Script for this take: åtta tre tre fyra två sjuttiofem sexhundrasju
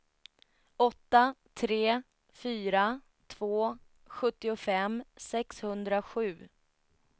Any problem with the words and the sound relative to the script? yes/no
yes